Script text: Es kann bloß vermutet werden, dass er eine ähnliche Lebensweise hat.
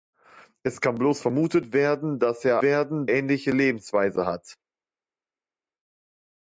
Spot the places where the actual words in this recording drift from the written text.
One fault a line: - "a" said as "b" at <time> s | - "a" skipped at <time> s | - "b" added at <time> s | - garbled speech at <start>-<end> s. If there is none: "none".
- "eine" said as "werden" at 2.6 s